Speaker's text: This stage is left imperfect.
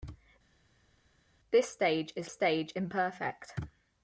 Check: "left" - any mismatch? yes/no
yes